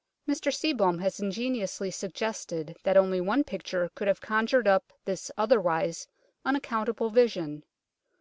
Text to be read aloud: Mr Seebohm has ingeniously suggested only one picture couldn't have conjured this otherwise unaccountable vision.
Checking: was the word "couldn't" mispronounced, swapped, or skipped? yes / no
yes